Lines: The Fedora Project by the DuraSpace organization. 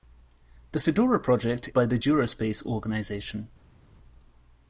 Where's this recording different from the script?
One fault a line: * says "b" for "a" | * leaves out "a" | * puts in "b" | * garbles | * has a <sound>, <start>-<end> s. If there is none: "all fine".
all fine